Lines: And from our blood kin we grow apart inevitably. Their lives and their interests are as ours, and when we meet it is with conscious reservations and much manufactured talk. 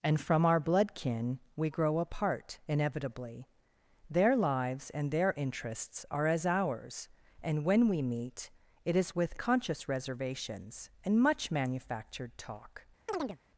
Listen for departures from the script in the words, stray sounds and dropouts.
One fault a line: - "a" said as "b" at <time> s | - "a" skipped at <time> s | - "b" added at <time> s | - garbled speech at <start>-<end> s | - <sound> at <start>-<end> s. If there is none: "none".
- chirp at 13.1-13.4 s